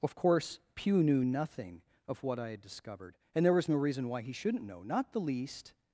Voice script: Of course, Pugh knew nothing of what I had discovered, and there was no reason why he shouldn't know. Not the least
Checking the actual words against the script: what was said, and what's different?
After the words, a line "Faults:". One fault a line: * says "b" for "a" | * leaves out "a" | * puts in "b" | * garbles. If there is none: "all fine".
Of course, Pugh knew nothing of what I had discovered, and there was no reason why he shouldn't know. Not the least
Faults:
all fine